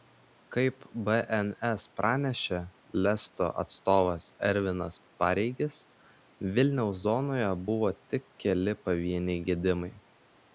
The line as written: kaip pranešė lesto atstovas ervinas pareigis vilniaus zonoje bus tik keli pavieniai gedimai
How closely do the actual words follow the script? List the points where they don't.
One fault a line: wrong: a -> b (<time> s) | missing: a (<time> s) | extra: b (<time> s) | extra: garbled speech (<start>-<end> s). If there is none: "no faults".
extra: bns (1.1 s)
wrong: bus -> buvo (7.7 s)